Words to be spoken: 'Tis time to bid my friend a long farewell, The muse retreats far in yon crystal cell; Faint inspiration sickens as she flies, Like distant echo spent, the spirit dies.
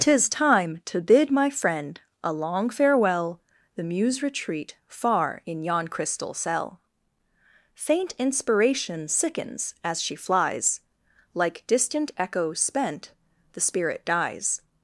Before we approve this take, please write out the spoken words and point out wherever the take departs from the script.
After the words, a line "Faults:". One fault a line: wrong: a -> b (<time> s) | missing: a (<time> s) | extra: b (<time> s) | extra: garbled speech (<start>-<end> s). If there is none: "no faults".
'Tis time to bid my friend a long farewell, The muse retreat far in yon crystal cell; Faint inspiration sickens as she flies, Like distant echo spent, the spirit dies.
Faults:
wrong: retreats -> retreat (4.2 s)